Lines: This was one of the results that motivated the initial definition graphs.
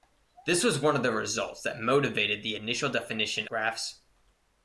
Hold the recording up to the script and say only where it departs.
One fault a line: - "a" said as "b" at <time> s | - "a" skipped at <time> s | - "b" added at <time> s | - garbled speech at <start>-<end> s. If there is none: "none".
none